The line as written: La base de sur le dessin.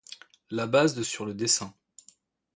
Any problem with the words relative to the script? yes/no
no